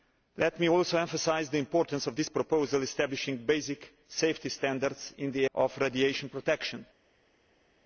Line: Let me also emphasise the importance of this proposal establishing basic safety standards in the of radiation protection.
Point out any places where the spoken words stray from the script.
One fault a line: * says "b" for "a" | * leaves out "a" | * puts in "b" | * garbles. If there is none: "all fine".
all fine